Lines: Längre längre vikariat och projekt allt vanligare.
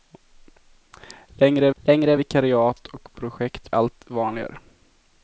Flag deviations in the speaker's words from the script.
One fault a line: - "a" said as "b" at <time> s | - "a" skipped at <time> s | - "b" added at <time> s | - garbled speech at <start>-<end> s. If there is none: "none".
none